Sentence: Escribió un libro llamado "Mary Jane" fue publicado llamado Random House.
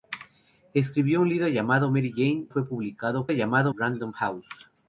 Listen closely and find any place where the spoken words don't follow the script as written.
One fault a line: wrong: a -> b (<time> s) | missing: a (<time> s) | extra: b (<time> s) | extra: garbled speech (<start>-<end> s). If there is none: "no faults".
no faults